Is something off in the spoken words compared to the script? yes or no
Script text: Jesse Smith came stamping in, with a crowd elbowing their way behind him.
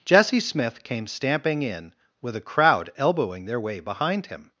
no